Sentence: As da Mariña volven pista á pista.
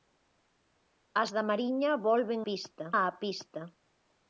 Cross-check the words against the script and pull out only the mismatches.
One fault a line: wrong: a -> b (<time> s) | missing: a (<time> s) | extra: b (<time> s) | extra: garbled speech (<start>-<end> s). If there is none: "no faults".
no faults